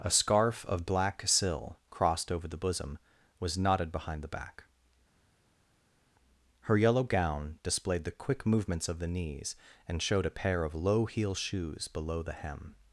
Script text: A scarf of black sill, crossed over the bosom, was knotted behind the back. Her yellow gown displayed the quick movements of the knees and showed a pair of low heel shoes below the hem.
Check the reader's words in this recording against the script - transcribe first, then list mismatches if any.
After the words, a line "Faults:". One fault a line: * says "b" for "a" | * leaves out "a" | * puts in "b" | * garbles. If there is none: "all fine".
A scarf of black sill, crossed over the bosom, was knotted behind the back. Her yellow gown displayed the quick movements of the knees and showed a pair of low heel shoes below the hem.
Faults:
all fine